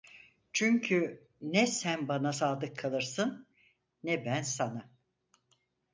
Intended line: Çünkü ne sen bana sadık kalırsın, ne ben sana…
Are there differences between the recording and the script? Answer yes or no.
no